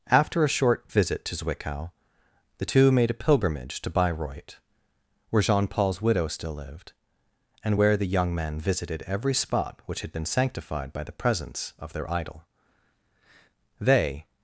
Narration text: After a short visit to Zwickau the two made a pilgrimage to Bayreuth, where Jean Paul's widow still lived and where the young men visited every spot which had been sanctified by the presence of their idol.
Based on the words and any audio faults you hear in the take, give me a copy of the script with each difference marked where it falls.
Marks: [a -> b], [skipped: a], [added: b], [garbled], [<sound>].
After a short visit to Zwickau the two made a pilgrimage to Bayreuth, where Jean Paul's widow still lived and where the young men visited every spot which had been sanctified by the presence of their idol. [added: They]